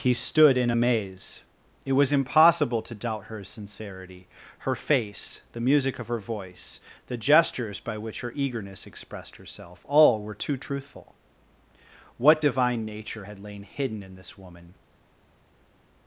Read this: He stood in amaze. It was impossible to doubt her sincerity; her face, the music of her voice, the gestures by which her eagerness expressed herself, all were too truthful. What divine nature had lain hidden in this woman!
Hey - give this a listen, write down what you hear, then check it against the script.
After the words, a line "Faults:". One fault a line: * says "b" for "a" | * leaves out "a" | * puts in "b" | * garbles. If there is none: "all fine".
He stood in amaze. It was impossible to doubt her sincerity; her face, the music of her voice, the gestures by which her eagerness expressed herself, all were too truthful. What divine nature had lain hidden in this woman!
Faults:
all fine